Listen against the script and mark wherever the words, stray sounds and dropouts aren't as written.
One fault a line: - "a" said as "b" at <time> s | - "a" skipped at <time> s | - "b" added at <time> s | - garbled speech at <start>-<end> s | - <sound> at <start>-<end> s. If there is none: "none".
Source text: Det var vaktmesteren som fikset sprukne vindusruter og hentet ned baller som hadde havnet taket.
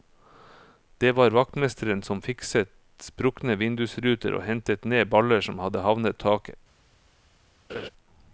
- laugh at 7.7-7.9 s